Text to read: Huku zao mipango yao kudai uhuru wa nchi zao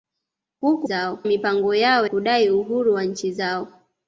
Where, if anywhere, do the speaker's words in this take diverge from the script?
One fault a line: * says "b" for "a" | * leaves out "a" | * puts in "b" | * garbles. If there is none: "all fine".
all fine